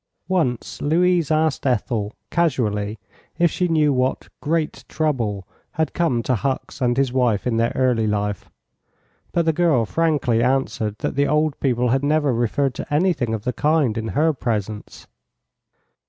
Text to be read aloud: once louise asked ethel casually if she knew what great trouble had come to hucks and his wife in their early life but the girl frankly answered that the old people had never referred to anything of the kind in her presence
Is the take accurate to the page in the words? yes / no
yes